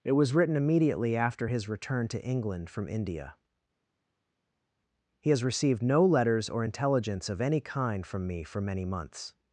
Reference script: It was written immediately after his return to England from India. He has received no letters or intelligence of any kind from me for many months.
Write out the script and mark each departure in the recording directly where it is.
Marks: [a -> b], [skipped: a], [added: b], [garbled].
It was written immediately after his return to England from India. He has received no letters or intelligence of any kind from me for many months.